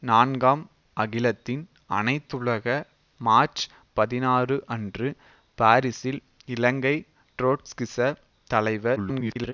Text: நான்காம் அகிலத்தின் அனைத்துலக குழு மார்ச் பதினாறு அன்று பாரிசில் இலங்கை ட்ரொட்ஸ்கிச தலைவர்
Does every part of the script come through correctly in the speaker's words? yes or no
no